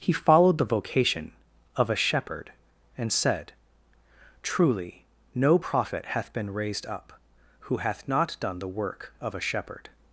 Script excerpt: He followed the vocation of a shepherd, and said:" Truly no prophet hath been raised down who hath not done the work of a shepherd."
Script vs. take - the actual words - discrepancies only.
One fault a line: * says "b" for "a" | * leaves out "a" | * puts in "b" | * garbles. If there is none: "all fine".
* says "up" for "down"